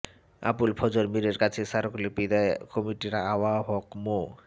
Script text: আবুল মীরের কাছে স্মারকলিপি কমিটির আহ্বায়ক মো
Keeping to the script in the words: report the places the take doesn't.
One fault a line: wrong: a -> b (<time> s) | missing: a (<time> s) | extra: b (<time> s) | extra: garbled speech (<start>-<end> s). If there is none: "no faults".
extra: ফজর (0.8 s)
extra: দেয় (2.3 s)